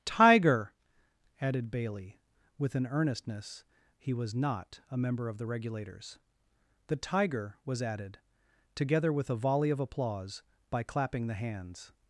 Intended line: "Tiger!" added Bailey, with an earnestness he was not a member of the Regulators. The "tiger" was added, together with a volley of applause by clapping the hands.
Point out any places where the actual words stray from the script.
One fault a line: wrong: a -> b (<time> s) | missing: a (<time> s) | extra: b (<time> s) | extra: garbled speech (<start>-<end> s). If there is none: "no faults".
no faults